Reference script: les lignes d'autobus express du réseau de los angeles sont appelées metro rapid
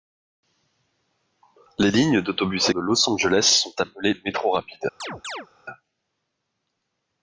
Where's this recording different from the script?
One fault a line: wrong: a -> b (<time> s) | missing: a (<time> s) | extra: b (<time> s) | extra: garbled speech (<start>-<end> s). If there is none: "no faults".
missing: express du réseau (2.7 s)